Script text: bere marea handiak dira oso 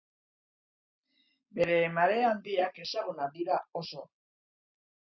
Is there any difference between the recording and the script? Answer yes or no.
yes